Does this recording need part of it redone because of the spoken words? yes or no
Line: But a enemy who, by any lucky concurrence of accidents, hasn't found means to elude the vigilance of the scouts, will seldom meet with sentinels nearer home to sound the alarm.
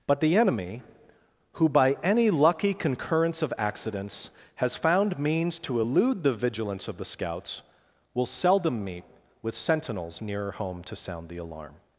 yes